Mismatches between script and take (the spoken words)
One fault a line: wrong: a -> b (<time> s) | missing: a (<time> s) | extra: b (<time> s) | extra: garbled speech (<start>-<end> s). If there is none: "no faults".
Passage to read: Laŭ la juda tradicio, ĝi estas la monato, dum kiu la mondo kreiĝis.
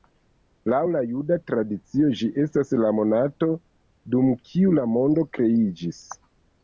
no faults